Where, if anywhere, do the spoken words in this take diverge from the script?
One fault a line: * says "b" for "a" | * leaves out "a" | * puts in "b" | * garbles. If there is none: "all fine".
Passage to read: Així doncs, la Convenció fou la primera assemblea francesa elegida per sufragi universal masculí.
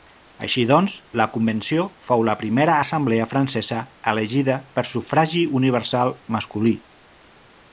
all fine